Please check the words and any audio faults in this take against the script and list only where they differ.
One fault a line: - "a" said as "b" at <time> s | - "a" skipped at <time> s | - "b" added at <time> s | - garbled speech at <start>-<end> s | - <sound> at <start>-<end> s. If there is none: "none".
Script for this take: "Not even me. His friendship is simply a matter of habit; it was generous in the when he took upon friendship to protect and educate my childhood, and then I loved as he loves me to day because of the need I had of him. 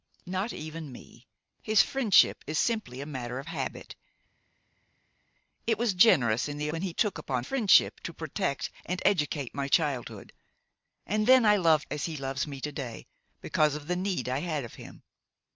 none